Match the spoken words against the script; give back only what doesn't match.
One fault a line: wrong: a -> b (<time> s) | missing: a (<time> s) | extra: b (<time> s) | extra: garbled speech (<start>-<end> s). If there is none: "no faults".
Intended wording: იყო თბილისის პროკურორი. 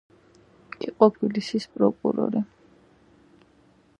no faults